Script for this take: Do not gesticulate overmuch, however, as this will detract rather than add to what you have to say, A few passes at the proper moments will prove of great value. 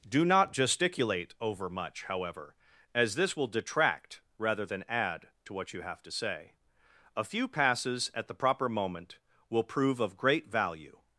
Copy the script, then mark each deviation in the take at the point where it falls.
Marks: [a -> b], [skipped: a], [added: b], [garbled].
Do not gesticulate overmuch, however, as this will detract rather than add to what you have to say, A few passes at the proper [moments -> moment] will prove of great value.